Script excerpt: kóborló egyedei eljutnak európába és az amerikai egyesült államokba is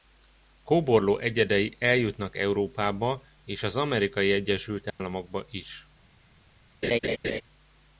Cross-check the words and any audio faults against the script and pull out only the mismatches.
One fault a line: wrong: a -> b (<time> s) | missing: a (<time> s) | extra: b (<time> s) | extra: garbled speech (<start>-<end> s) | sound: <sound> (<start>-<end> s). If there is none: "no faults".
sound: dropout (4.9-5.0 s)
sound: laugh (6.8-7.4 s)